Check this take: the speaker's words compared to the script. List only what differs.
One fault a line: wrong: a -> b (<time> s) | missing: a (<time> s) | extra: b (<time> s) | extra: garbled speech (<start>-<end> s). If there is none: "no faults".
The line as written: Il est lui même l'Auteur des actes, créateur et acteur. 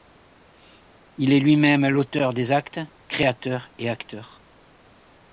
no faults